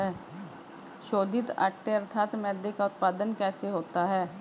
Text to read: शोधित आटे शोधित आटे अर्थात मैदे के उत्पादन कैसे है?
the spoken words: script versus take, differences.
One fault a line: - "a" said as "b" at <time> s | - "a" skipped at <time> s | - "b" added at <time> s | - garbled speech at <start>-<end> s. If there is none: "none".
- "शोधित आटे" skipped at 1.9 s
- "के" said as "का" at 2.7 s
- "होता" added at 3.7 s